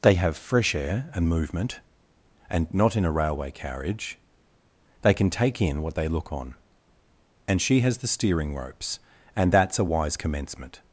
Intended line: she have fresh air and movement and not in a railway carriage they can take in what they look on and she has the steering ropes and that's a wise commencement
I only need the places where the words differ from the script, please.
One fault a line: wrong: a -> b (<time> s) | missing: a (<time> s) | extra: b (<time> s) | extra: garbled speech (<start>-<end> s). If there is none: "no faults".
wrong: she -> they (0.0 s)